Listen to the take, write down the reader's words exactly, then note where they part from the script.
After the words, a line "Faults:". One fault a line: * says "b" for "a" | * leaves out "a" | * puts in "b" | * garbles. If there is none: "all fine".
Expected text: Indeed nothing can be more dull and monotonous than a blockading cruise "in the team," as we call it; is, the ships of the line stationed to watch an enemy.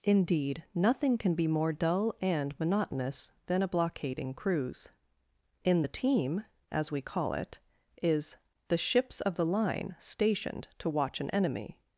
Indeed nothing can be more dull and monotonous than a blockading cruise "in the team," as we call it; is, the ships of the line stationed to watch an enemy.
Faults:
all fine